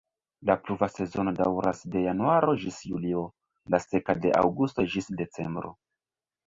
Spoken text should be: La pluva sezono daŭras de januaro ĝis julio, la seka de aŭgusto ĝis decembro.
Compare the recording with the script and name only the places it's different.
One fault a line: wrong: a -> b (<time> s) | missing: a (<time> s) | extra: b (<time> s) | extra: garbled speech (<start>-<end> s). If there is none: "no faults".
no faults